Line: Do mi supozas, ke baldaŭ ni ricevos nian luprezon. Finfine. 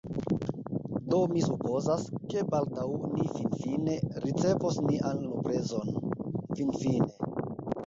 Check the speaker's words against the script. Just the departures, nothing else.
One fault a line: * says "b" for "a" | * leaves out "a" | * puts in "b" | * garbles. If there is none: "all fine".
* puts in "finfine"